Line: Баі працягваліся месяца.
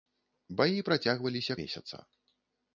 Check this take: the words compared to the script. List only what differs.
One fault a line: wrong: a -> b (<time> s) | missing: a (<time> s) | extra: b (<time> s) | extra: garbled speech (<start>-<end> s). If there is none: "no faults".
no faults